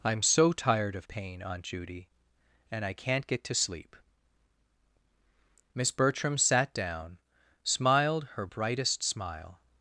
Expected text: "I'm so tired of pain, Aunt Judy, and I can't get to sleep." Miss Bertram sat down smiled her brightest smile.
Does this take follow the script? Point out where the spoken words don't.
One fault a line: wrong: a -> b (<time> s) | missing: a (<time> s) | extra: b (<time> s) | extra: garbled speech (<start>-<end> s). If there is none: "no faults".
no faults